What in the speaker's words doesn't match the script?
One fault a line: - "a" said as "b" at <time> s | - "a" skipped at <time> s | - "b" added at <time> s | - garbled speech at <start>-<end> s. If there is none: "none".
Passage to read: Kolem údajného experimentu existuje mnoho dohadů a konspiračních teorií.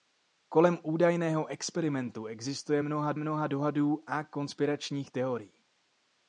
- "mnoho" added at 3.2 s